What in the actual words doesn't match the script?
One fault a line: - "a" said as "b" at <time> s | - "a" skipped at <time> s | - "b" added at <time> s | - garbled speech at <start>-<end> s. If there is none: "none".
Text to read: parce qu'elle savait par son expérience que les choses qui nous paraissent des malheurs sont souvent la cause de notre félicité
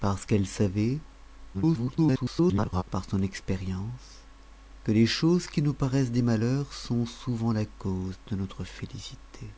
- garbled speech at 1.5-2.8 s